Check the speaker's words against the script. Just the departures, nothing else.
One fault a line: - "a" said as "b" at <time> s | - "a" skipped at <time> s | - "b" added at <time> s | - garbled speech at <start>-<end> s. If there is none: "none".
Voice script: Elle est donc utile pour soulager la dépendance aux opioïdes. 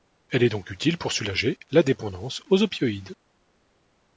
none